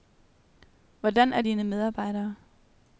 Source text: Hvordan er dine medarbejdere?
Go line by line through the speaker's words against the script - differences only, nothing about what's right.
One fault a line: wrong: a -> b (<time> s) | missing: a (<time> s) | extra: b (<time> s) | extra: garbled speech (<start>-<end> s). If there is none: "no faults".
no faults